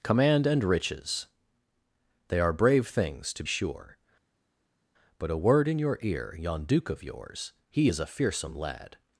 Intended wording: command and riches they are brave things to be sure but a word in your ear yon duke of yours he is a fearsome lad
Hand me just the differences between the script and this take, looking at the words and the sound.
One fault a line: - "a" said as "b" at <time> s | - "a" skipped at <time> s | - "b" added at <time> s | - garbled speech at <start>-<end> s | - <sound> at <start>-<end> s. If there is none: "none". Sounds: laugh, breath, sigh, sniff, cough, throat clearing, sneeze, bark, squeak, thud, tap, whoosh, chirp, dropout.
- "be" skipped at 3.4 s